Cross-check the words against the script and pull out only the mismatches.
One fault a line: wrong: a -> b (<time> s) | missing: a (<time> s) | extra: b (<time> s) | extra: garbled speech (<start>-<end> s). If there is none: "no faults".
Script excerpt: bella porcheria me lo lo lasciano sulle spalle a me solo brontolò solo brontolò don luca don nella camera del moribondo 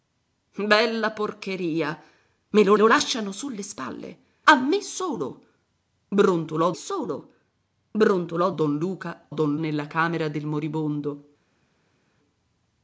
no faults